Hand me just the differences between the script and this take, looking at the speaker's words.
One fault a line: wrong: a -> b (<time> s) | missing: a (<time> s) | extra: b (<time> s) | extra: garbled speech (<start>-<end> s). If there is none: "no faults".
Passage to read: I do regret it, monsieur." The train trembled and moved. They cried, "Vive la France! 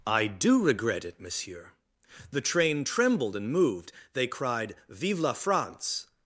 no faults